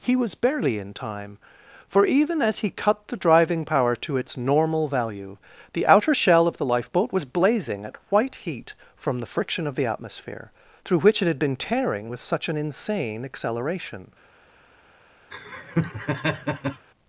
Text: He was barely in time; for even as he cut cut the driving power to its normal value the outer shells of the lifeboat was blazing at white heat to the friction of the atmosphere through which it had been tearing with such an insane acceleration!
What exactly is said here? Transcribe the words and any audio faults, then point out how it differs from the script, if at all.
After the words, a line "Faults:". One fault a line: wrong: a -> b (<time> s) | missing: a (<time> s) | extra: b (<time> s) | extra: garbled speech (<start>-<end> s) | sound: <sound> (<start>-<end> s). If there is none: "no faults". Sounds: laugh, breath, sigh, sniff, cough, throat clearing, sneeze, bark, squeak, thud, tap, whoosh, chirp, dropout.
He was barely in time; for even as he cut the driving power to its normal value the outer shell of the lifeboat was blazing at white heat from the friction of the atmosphere through which it had been tearing with such an insane acceleration!
Faults:
missing: cut (3.1 s)
wrong: shells -> shell (6.1 s)
wrong: to -> from (9.0 s)
sound: laugh (15.3-16.9 s)